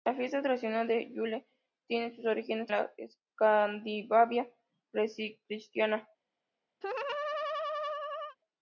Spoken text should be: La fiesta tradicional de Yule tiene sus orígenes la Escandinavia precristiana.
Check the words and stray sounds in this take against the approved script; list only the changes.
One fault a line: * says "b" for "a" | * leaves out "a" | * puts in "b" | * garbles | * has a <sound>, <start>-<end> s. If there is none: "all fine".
* has a laugh, 6.8-8.4 s